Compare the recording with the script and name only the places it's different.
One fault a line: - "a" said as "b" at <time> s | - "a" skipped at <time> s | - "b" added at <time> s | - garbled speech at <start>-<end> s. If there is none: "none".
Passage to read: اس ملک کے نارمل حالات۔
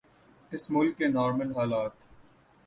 none